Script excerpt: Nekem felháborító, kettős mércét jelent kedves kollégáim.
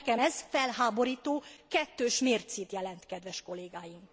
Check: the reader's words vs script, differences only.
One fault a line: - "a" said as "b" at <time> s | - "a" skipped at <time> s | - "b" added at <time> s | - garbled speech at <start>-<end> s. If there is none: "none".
- "ez" added at 0.2 s